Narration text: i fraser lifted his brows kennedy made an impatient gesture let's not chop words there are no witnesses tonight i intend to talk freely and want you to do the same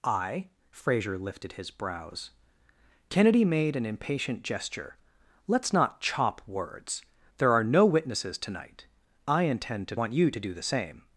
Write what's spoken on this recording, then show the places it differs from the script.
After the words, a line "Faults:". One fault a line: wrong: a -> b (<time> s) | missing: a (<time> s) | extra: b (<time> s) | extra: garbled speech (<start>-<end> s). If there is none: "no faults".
i fraser lifted his brows kennedy made an impatient gesture let's not chop words there are no witnesses tonight i intend to want you to do the same
Faults:
missing: talk freely and (9.9 s)